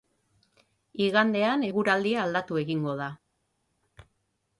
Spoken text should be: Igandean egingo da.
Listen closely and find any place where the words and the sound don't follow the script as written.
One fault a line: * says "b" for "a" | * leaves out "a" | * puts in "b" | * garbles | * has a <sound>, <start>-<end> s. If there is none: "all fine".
* puts in "eguraldia aldatu"